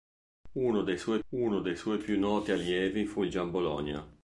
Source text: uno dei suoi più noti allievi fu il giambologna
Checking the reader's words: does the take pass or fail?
fail